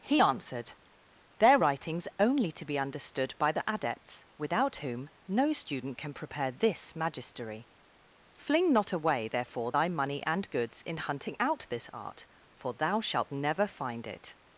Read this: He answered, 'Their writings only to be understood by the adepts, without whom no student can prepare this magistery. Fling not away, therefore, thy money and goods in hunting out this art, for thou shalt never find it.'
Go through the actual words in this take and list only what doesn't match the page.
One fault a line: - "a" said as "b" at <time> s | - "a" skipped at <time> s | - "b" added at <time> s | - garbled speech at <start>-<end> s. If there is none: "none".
none